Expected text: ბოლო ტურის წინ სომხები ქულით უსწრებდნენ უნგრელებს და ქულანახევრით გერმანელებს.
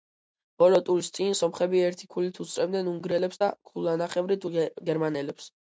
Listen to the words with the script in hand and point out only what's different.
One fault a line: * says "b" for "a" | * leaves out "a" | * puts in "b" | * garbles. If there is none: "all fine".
* puts in "ერთი"